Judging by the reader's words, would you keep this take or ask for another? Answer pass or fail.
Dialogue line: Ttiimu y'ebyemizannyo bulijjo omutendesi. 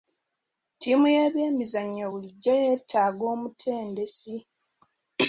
fail